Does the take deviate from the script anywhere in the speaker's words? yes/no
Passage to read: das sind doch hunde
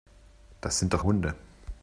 no